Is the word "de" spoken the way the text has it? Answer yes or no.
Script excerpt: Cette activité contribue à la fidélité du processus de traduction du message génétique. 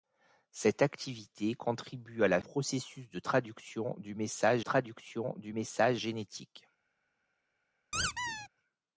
no